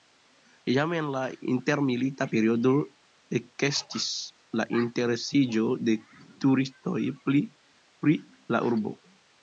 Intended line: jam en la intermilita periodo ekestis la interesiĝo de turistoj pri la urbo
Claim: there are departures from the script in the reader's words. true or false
false